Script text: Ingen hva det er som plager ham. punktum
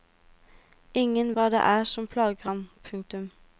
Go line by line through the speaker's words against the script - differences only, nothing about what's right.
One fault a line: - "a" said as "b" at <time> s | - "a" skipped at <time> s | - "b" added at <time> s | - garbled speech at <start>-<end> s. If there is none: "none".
none